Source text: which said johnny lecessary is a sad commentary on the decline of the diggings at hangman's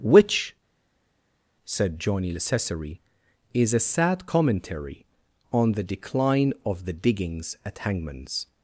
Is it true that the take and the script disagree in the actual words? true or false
false